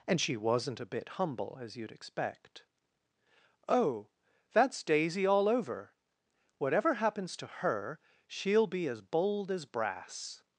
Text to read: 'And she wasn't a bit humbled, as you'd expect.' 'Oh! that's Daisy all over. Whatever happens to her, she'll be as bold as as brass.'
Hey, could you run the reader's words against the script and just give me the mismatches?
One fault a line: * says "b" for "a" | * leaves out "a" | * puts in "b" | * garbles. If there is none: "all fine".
* says "humble" for "humbled"
* leaves out "as"